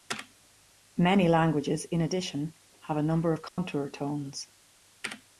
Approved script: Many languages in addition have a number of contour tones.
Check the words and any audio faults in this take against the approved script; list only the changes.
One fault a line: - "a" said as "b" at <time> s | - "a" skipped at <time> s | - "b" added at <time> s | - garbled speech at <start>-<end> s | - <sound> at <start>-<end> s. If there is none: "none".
- dropout at 3.5-3.6 s